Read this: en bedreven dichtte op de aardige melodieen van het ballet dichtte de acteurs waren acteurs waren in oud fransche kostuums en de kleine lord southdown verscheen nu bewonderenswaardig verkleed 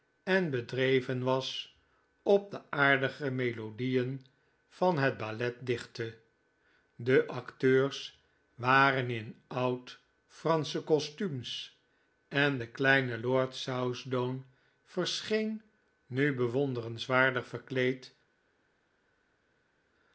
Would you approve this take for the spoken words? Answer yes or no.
no